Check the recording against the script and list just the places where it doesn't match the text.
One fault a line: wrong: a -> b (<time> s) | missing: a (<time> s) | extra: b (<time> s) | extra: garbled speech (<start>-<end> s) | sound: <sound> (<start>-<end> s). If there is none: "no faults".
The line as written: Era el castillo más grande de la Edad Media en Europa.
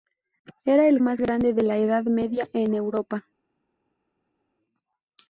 missing: castillo (1.0 s)